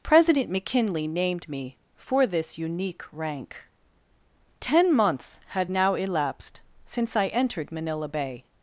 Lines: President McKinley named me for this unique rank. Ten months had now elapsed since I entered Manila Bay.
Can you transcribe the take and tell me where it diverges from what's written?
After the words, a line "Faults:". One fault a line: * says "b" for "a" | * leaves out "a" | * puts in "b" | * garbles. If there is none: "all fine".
President McKinley named me for this unique rank. Ten months had now elapsed since I entered Manila Bay.
Faults:
all fine